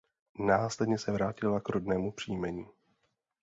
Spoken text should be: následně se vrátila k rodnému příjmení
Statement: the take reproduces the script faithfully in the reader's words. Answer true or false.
true